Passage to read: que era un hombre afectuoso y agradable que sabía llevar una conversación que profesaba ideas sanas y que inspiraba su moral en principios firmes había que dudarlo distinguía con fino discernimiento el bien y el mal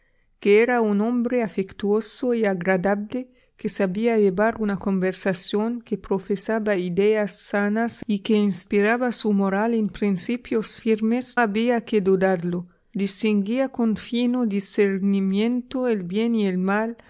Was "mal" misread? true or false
false